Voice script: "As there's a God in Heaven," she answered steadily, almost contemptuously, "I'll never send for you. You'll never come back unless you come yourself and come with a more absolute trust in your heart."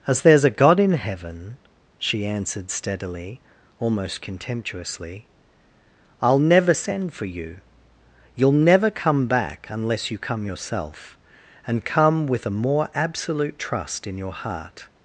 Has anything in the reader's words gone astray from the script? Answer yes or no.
no